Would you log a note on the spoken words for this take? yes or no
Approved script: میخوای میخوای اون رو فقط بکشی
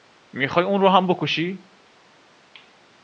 yes